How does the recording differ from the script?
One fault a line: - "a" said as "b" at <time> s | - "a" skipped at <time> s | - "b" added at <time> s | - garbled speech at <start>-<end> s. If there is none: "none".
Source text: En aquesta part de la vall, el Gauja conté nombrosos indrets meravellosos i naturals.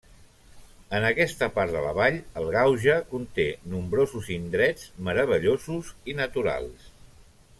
none